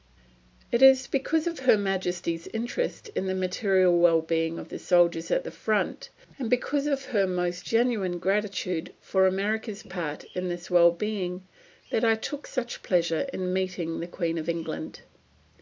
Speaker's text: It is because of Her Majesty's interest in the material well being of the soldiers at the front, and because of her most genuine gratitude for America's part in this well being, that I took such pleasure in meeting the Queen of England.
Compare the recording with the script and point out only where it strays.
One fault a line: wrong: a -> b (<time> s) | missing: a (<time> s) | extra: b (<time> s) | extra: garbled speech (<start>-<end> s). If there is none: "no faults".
no faults